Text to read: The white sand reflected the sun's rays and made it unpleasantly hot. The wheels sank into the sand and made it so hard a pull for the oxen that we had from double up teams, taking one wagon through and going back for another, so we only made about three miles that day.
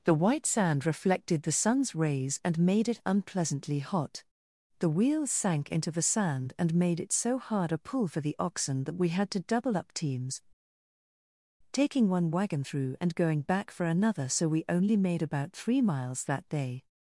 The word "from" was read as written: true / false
false